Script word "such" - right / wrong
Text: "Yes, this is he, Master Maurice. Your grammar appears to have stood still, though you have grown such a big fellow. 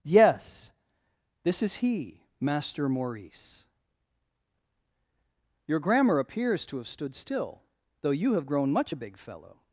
wrong